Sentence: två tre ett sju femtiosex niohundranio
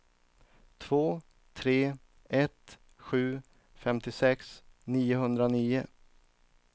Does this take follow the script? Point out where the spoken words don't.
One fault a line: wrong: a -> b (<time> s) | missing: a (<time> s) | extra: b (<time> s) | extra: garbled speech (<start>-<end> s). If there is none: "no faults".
no faults